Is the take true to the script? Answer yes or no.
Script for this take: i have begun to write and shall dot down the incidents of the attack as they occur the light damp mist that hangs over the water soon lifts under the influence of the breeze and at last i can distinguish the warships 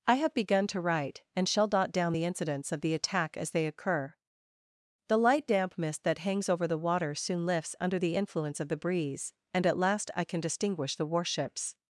yes